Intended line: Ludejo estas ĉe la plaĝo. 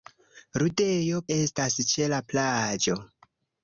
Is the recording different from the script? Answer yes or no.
no